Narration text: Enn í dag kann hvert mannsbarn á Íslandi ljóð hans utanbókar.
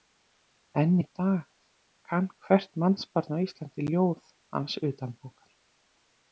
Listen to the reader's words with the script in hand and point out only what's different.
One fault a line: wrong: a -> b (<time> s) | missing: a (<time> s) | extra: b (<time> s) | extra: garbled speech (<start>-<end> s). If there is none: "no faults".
no faults